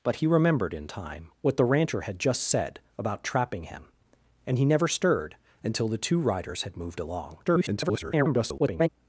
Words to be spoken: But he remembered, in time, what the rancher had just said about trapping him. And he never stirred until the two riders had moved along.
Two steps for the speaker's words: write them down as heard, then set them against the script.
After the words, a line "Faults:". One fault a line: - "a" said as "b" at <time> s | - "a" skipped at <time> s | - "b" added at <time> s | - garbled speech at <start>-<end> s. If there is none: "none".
But he remembered, in time, what the rancher had just said about trapping him. And he never stirred until the two riders had moved along. [garbled]
Faults:
- garbled speech at 7.4-8.9 s